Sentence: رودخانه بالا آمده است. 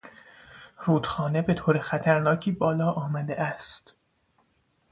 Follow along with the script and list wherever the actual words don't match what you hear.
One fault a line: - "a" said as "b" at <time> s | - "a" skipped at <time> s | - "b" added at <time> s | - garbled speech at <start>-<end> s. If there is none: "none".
- "به طور خطرناکی" added at 1.4 s